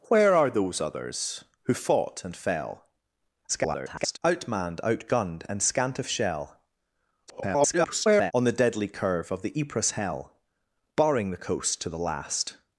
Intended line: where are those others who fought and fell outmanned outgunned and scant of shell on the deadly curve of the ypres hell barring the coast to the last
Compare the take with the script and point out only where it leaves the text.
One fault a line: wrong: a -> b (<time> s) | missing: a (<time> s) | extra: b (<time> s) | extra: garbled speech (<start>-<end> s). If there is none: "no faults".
extra: garbled speech (3.5-4.2 s)
extra: garbled speech (7.3-8.3 s)